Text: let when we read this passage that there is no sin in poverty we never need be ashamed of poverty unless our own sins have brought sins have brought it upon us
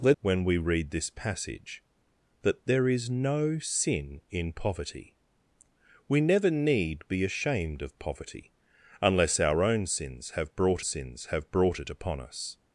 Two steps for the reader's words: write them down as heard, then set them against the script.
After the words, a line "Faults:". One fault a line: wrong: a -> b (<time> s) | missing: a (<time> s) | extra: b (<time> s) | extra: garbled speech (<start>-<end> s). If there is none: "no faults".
let when we read this passage that there is no sin in poverty we never need be ashamed of poverty unless our own sins have brought sins have brought it upon us
Faults:
no faults